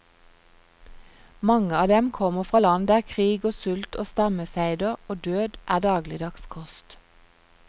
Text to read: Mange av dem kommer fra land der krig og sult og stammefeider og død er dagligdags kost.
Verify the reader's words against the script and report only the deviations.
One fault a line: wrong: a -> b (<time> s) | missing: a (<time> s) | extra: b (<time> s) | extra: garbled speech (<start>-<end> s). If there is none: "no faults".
no faults